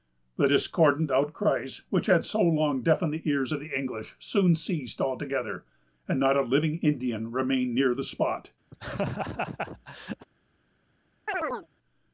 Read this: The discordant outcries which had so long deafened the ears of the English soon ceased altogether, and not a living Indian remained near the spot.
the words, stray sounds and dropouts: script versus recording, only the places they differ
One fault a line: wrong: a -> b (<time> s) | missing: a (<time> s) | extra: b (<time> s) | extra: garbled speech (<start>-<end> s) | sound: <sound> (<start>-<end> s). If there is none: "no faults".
sound: laugh (8.7-10.3 s)
sound: chirp (11.3-11.7 s)